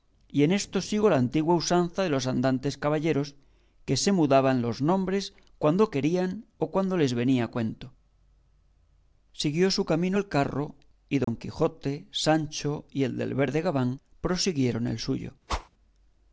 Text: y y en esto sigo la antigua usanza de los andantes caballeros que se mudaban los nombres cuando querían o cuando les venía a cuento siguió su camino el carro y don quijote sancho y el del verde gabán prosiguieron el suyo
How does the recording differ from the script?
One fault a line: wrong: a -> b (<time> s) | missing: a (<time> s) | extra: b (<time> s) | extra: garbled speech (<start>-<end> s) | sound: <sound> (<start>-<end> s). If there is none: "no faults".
missing: y (0.4 s)
sound: dropout (11.2-11.3 s)
sound: whoosh (15.5-15.7 s)